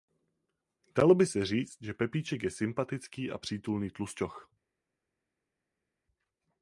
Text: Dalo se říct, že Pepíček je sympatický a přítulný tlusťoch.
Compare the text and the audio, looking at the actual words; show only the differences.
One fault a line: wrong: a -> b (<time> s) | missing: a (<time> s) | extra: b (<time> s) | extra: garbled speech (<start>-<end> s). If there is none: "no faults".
extra: by (1.1 s)